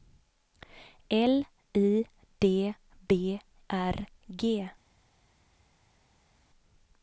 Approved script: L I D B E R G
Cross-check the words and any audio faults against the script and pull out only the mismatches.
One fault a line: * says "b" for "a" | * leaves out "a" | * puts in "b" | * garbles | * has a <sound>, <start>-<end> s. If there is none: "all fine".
* leaves out "E"